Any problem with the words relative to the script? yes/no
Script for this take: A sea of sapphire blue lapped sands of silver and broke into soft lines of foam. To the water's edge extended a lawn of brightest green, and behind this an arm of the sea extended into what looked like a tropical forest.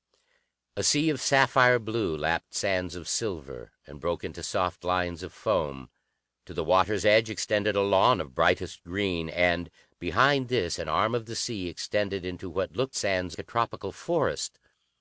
yes